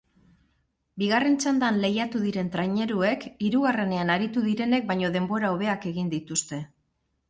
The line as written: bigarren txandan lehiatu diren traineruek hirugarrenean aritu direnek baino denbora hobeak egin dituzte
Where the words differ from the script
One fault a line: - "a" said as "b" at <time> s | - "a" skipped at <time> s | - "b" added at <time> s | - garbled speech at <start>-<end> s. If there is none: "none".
none